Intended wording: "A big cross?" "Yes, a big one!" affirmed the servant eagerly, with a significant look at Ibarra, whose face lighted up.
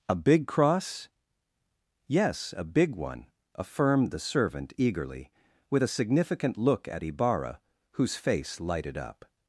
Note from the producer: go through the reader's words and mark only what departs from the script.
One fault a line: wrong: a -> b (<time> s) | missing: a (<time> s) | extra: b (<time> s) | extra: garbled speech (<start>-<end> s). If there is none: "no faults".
no faults